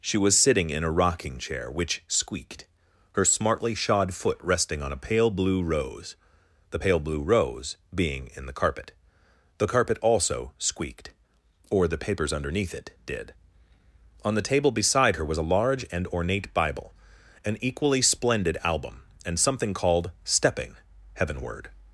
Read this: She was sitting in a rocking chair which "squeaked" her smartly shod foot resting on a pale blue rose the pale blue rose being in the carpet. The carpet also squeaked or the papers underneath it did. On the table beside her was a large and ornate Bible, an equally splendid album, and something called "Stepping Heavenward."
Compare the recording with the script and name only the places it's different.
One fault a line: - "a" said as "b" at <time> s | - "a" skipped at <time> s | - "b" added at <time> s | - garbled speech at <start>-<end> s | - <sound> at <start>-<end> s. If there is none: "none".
none